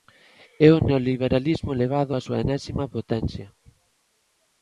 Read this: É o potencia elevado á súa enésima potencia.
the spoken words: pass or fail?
fail